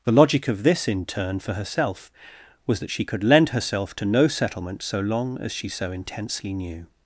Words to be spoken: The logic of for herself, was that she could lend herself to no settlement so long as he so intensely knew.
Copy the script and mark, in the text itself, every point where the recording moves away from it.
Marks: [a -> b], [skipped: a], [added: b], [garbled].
The logic of [added: this in turn] for herself, was that she could lend herself to no settlement so long as [he -> she] so intensely knew.